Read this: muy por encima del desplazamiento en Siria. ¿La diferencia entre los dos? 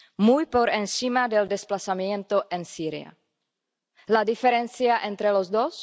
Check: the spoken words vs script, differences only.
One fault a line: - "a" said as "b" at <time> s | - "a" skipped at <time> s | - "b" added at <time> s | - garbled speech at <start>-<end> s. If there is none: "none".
none